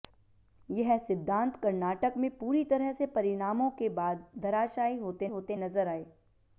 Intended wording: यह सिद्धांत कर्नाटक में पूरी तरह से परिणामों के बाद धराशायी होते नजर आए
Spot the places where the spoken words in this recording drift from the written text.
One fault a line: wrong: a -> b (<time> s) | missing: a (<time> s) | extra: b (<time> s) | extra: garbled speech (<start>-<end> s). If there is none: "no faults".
extra: होते (5.3 s)